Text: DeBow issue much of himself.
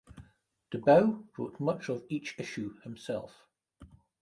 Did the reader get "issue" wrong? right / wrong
wrong